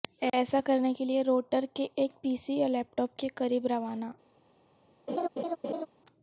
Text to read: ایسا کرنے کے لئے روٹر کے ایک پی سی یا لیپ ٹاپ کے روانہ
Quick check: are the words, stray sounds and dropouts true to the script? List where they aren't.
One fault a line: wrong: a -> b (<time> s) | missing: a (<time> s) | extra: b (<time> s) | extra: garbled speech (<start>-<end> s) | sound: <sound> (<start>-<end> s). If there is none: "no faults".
extra: قریب (3.3 s)
sound: laugh (5.1-5.9 s)